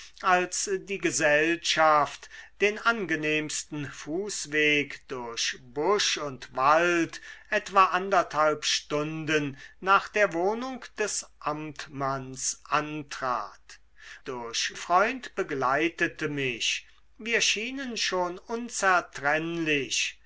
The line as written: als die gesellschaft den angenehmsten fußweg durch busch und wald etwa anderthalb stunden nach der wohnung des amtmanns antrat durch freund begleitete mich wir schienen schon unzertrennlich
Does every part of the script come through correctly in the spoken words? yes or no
yes